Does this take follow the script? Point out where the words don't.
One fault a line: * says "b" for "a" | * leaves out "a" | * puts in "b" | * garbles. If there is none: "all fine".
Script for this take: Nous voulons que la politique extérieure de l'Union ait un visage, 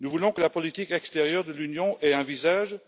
all fine